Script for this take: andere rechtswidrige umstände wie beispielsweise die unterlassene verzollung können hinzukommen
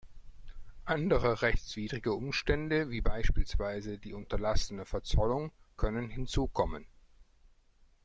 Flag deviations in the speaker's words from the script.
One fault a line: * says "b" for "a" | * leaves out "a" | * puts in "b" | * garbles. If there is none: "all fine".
all fine